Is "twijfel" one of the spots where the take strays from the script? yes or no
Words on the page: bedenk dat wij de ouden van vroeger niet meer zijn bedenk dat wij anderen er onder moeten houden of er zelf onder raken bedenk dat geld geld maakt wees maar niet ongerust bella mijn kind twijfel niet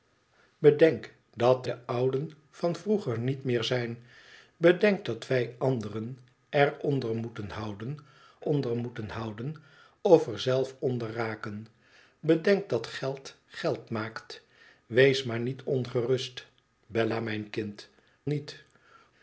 yes